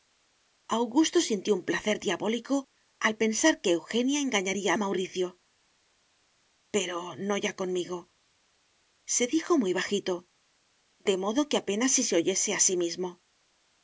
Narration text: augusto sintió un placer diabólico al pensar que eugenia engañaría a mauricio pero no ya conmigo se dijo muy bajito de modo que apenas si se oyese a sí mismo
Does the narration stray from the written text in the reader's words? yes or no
no